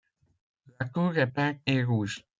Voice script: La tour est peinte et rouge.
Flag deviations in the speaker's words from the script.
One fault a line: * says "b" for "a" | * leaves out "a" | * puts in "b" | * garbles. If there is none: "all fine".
all fine